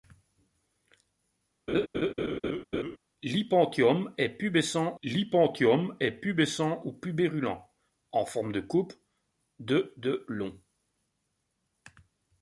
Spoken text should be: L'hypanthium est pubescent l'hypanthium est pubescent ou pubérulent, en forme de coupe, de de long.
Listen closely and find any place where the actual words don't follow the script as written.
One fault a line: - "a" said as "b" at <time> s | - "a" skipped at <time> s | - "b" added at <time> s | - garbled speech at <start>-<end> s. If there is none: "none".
none